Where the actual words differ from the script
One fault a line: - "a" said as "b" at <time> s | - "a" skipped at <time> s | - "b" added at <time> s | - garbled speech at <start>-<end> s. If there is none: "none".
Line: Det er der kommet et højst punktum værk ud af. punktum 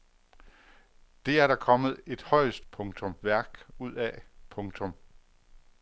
none